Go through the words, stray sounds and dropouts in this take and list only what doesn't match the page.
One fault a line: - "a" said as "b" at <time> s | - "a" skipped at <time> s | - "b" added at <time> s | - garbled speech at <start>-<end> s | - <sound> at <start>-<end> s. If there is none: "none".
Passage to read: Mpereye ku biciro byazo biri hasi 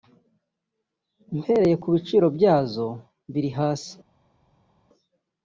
none